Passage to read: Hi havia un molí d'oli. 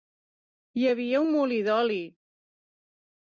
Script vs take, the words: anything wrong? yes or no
no